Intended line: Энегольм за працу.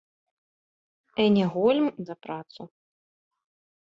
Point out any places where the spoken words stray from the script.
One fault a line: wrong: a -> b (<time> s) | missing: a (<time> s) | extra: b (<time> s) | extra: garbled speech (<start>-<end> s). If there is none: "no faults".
no faults